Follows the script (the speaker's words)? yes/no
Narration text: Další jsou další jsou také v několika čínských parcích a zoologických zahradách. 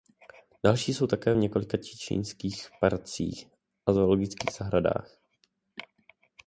no